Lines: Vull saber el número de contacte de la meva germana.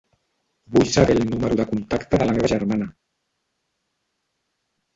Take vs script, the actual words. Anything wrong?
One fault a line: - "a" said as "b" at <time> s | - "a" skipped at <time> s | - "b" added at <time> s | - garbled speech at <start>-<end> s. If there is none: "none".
none